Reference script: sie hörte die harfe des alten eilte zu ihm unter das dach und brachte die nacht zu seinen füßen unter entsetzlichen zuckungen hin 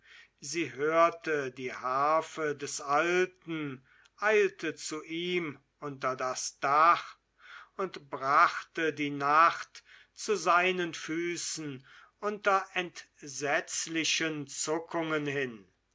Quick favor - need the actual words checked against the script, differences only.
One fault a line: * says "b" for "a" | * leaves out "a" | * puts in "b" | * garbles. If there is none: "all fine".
all fine